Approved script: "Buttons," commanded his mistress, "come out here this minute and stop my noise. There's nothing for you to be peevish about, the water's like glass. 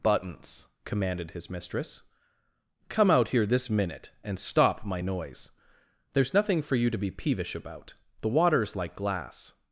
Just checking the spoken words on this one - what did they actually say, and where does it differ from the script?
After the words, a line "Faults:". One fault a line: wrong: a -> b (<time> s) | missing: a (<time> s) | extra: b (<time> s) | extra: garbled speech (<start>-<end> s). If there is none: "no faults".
"Buttons," commanded his mistress, "come out here this minute and stop my noise. There's nothing for you to be peevish about, the water's like glass.
Faults:
no faults